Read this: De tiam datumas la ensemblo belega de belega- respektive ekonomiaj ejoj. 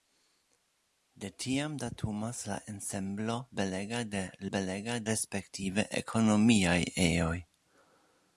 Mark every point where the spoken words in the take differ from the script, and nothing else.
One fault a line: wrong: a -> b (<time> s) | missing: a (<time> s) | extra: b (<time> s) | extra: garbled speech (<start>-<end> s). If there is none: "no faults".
no faults